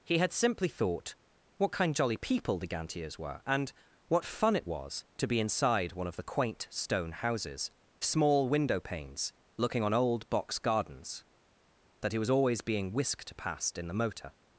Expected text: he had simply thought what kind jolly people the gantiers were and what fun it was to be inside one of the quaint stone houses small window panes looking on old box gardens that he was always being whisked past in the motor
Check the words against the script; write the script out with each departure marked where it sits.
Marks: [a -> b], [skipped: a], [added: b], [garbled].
he had simply thought what kind jolly people the gantiers were and what fun it was to be inside one of the quaint stone houses small window panes looking on old box gardens that he was always being whisked past in the motor